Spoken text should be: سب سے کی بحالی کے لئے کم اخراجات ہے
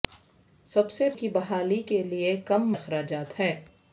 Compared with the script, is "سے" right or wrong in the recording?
right